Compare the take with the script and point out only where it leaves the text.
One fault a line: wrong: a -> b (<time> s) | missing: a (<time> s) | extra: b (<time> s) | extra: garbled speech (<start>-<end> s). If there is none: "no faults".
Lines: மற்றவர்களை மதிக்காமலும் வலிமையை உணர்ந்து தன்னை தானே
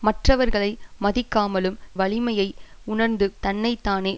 no faults